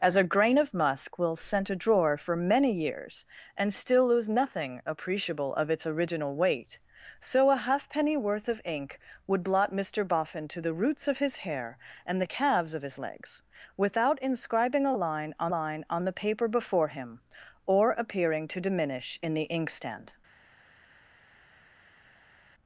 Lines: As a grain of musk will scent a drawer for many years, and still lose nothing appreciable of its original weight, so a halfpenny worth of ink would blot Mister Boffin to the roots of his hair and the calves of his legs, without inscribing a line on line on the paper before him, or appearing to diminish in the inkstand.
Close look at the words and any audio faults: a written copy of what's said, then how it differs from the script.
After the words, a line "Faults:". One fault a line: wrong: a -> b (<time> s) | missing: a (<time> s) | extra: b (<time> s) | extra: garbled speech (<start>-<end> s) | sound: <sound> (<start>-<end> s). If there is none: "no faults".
As a grain of musk will scent a drawer for many years, and still lose nothing appreciable of its original weight, so a halfpenny worth of ink would blot Mister Boffin to the roots of his hair and the calves of his legs, without inscribing a line on line on the paper before him, or appearing to diminish in the inkstand.
Faults:
no faults